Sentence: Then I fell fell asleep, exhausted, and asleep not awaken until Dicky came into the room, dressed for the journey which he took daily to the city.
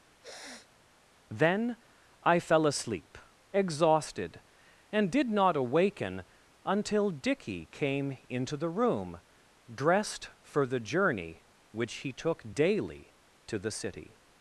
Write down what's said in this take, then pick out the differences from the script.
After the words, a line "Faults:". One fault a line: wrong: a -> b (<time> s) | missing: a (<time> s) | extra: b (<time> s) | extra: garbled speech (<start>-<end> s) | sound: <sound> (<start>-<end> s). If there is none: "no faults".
Then I fell asleep, exhausted, and did not awaken until Dicky came into the room, dressed for the journey which he took daily to the city.
Faults:
sound: sniff (0.2-0.8 s)
missing: fell (2.7 s)
wrong: asleep -> did (5.1 s)